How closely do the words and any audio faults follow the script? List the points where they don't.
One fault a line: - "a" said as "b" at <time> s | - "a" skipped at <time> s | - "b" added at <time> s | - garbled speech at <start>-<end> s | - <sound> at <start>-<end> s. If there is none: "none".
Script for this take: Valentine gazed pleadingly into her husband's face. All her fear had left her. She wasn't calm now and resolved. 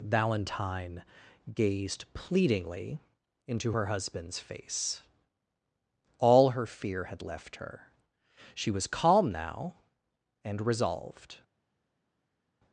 - "wasn't" said as "was" at 8.7 s